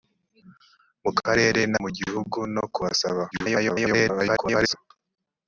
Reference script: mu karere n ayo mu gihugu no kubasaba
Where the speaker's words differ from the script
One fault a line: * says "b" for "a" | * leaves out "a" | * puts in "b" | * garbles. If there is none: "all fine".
* leaves out "ayo"
* garbles